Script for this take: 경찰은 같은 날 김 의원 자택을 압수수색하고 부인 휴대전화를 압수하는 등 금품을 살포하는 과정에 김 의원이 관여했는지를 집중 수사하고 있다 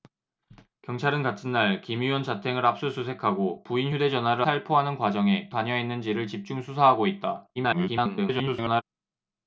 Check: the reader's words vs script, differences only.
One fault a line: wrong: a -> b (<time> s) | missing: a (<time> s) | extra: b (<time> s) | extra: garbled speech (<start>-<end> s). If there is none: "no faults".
missing: 압수하는 등 금품을 (4.4 s)
missing: 김 의원이 (5.5 s)
extra: garbled speech (7.6-8.8 s)